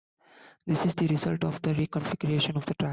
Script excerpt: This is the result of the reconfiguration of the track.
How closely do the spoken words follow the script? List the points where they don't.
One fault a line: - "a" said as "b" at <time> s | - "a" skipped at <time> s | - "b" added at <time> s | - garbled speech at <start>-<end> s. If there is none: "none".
none